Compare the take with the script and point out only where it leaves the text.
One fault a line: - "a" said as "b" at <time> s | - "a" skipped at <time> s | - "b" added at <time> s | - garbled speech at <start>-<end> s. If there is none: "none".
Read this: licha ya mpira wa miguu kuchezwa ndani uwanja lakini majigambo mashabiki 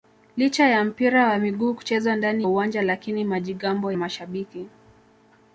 none